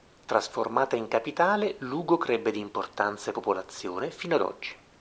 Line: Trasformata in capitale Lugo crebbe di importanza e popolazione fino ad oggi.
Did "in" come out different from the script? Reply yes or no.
no